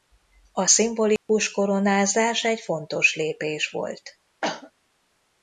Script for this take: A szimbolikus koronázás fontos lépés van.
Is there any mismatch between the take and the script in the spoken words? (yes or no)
yes